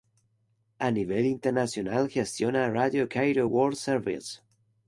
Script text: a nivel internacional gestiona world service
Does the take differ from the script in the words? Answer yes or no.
yes